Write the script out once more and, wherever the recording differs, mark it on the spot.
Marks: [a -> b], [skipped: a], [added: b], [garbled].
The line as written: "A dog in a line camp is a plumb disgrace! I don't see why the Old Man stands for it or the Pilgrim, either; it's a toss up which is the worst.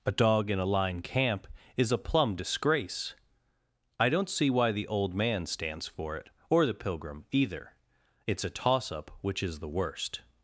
"A dog in a line camp is a plumb disgrace! I don't see why the Old Man stands for it or the Pilgrim, either; it's a toss up which is the worst.